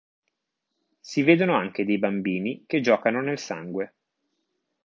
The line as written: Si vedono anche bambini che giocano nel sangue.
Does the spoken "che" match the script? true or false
true